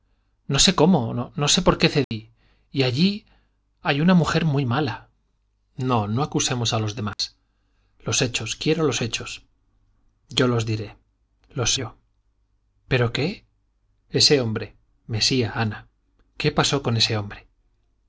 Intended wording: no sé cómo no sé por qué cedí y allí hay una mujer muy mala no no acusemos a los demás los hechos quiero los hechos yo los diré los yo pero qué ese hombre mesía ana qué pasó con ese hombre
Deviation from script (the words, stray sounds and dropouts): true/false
true